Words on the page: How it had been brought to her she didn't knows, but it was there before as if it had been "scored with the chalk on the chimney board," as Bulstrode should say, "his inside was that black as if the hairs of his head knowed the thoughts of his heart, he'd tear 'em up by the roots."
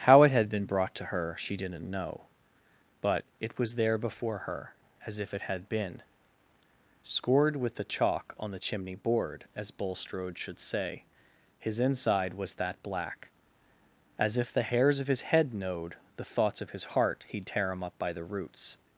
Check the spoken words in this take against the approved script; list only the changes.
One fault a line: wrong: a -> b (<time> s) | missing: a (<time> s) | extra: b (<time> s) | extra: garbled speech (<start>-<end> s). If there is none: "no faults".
wrong: knows -> know (1.9 s)
extra: her (4.5 s)